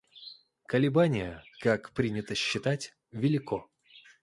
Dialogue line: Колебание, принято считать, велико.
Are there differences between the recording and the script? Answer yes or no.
yes